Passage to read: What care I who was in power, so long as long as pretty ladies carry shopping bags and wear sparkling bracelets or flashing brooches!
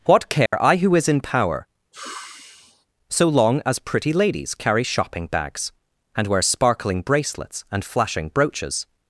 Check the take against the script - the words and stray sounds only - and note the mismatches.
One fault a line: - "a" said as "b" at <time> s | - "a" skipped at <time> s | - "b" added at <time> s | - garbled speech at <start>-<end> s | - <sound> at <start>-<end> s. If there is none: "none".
- dropout at 0.5-0.5 s
- "was" said as "is" at 0.9 s
- sigh at 1.9-2.9 s
- "long as" skipped at 3.8 s
- "or" said as "and" at 7.7 s